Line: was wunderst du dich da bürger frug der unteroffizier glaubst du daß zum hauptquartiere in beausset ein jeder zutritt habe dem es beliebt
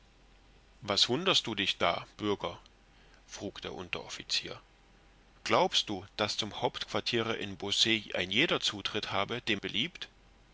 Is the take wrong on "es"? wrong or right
wrong